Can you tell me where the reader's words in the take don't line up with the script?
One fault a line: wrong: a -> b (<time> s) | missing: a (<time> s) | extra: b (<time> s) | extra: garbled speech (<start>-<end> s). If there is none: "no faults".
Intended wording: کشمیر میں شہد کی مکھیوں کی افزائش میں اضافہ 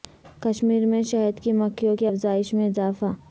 no faults